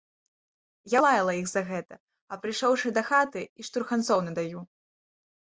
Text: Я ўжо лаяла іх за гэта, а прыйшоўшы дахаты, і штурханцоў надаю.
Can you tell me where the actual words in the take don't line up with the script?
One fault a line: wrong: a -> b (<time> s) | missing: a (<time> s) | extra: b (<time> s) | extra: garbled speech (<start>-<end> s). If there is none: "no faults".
missing: ўжо (1.0 s)